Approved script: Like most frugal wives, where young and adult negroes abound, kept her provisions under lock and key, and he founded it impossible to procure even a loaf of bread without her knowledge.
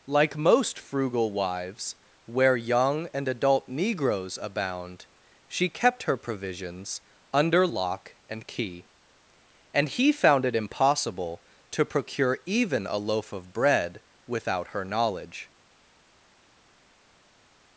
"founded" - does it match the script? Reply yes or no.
no